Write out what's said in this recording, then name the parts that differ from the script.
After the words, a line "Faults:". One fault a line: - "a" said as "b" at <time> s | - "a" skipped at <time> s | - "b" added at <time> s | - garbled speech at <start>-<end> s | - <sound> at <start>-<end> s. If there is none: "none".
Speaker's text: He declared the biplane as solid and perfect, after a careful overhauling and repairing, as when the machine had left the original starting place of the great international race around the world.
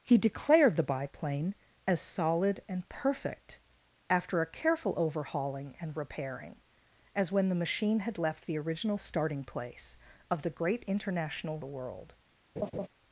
He declared the biplane as solid and perfect, after a careful overhauling and repairing, as when the machine had left the original starting place of the great international the world.
Faults:
- "race around" skipped at 11.6 s
- laugh at 12.6-12.9 s